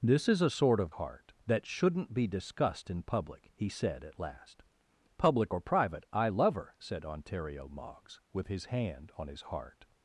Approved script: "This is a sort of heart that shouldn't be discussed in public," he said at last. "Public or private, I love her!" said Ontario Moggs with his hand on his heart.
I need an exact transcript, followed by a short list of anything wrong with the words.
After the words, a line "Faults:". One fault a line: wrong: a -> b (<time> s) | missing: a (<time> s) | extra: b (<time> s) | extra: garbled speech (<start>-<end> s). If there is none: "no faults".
"This is a sort of heart that shouldn't be discussed in public," he said at last. "Public or private, I love her!" said Ontario Moggs with his hand on his heart.
Faults:
no faults